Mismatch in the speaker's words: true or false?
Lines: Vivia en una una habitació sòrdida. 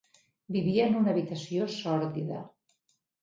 true